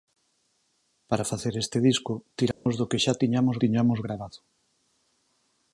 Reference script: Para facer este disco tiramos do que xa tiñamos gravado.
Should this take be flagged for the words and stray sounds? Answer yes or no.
yes